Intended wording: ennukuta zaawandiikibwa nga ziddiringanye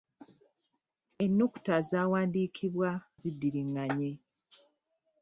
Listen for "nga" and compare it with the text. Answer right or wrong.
wrong